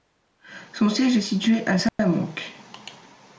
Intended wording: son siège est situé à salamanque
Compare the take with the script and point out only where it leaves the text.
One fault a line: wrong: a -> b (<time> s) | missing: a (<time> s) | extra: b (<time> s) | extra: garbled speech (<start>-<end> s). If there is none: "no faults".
no faults